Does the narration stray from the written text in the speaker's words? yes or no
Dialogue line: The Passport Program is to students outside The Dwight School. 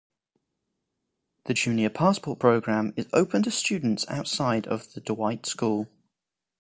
yes